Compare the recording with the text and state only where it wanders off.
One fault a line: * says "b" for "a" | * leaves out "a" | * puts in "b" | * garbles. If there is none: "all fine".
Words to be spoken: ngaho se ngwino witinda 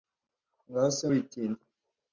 * leaves out "ngwino"